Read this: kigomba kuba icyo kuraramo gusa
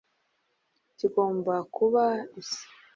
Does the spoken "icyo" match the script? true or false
false